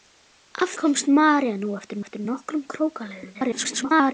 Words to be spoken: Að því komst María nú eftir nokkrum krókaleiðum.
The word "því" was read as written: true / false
false